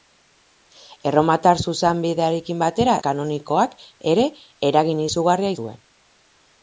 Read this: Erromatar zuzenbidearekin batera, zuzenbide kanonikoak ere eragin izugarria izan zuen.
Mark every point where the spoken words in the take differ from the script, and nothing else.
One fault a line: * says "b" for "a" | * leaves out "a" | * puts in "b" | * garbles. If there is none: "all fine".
* leaves out "zuzenbide"
* leaves out "izan"